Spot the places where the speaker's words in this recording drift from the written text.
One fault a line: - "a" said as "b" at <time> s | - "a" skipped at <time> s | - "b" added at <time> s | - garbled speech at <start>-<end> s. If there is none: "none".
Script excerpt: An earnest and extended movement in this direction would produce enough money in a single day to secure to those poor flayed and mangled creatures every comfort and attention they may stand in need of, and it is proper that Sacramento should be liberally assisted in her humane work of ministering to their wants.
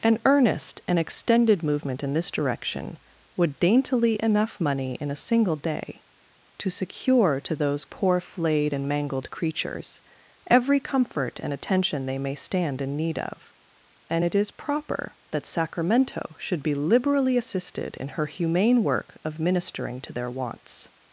- "produce" said as "daintily" at 3.6 s